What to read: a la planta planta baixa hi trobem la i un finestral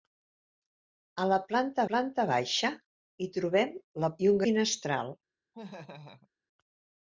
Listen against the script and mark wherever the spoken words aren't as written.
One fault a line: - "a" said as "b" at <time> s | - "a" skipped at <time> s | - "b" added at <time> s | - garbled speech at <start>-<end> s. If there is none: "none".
none